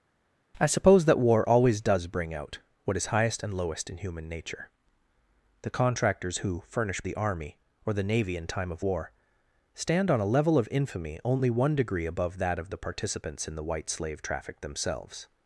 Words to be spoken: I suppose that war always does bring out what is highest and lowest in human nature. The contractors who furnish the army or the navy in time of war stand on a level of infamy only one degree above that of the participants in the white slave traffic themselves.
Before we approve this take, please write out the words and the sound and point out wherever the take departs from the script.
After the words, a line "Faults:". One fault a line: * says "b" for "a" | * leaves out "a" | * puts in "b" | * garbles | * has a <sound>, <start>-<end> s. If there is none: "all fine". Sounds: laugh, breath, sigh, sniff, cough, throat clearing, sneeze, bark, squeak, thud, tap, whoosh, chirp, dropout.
I suppose that war always does bring out what is highest and lowest in human nature. The contractors who furnish the army or the navy in time of war stand on a level of infamy only one degree above that of the participants in the white slave traffic themselves.
Faults:
all fine